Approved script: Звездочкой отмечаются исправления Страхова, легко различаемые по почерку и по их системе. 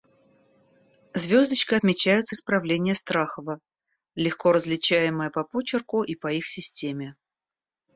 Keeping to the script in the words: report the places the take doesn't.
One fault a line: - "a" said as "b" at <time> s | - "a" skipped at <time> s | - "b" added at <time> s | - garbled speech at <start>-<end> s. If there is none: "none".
none